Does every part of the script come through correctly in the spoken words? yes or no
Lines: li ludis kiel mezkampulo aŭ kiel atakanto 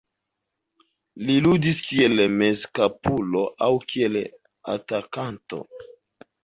yes